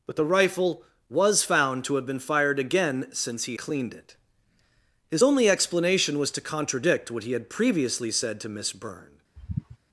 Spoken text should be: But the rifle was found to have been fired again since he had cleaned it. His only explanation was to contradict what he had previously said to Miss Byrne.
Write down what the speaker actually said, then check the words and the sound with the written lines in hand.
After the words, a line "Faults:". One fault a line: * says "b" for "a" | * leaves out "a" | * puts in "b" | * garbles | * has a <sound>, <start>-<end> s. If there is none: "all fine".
But the rifle was found to have been fired again since he cleaned it. His only explanation was to contradict what he had previously said to Miss Byrne.
Faults:
* leaves out "had"
* has a sigh, 9.4-9.8 s